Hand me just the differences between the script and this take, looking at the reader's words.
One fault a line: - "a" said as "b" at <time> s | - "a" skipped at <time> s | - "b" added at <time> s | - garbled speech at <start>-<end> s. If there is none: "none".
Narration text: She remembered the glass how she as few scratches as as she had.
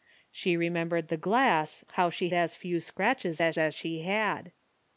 none